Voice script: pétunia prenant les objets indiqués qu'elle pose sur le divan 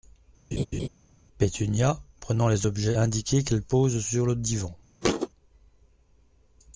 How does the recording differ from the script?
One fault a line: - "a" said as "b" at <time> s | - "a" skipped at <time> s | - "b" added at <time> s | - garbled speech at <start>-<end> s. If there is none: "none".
none